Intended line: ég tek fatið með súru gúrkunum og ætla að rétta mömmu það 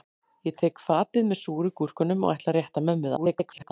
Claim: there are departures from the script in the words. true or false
true